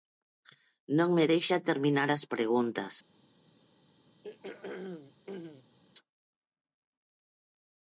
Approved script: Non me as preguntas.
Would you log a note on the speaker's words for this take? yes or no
yes